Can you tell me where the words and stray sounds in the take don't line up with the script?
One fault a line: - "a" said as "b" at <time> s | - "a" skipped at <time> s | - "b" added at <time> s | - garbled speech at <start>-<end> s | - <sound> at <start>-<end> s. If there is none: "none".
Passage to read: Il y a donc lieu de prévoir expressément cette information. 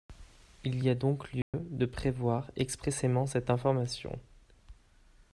- dropout at 1.4-1.5 s